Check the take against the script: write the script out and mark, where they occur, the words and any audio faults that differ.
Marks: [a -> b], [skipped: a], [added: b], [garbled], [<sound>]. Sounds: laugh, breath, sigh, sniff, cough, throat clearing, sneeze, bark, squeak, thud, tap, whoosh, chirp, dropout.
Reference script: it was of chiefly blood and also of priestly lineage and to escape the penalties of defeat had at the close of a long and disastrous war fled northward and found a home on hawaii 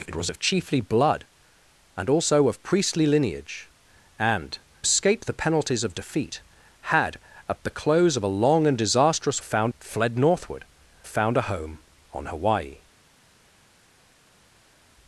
it was of chiefly blood and also of priestly lineage and [skipped: to] escape the penalties of defeat had at the close of a long and disastrous [war -> found] fled northward [skipped: and] found a home on hawaii